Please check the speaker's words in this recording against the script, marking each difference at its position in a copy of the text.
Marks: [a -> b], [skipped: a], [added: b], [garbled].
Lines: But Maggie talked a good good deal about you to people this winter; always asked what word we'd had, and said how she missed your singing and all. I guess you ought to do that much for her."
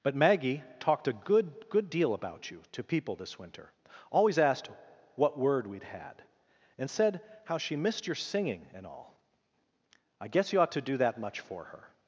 But Maggie talked a good good deal about you to people this winter; always asked what word we'd had, and said how she missed your singing and all. I guess you ought to do that much for her."